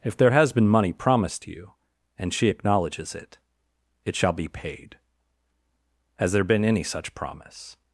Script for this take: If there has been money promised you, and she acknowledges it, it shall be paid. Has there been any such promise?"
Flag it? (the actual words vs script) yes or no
no